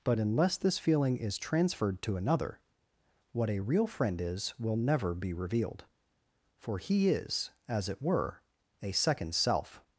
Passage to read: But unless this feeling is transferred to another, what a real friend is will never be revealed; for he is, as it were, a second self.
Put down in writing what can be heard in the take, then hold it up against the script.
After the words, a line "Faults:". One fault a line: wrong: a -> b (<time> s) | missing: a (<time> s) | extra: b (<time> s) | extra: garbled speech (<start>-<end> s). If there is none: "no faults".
But unless this feeling is transferred to another, what a real friend is will never be revealed; for he is, as it were, a second self.
Faults:
no faults